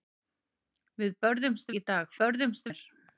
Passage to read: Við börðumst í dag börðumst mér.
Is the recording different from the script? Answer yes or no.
no